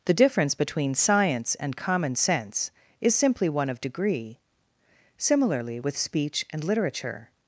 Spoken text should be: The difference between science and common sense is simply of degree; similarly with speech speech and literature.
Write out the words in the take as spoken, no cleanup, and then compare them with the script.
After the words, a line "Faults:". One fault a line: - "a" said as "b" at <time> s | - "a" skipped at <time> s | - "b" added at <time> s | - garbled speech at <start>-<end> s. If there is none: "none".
The difference between science and common sense is simply one of degree; similarly with speech and literature.
Faults:
- "one" added at 3.5 s
- "speech" skipped at 6.4 s